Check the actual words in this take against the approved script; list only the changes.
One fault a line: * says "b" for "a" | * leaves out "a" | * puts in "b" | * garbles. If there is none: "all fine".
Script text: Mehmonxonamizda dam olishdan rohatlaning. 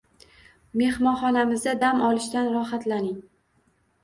all fine